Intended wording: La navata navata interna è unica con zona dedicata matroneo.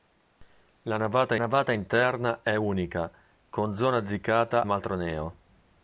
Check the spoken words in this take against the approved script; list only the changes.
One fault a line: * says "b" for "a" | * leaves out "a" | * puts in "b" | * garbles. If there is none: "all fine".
all fine